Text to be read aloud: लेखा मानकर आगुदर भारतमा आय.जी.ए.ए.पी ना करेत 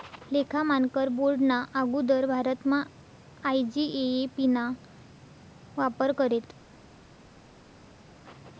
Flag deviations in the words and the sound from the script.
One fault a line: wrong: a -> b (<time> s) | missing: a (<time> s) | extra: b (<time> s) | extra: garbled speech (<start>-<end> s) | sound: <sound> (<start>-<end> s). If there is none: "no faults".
extra: बोर्डना (1.2 s)
extra: वापर (5.8 s)